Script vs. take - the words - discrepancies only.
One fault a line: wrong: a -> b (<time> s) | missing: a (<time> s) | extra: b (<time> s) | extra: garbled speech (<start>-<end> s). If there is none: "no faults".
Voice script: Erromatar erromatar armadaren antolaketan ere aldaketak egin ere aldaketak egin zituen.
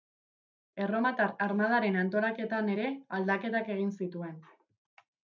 missing: erromatar (1.3 s)
missing: ere aldaketak egin (3.9 s)